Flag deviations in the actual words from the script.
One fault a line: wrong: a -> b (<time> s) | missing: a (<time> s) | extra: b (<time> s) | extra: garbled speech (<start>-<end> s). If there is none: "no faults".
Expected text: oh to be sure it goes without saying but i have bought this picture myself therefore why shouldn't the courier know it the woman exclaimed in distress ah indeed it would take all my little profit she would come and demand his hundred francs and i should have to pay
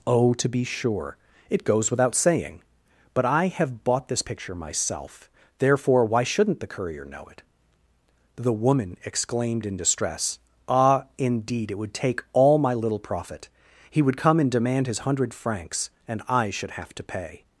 wrong: she -> he (13.9 s)